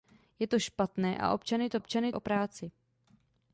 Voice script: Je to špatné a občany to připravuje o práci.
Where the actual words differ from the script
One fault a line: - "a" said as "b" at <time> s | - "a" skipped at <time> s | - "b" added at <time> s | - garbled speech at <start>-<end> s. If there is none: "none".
- "připravuje" said as "občany" at 1.8 s